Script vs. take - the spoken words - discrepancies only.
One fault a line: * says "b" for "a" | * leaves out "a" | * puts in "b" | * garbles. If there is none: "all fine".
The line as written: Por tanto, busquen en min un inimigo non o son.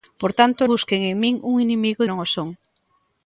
all fine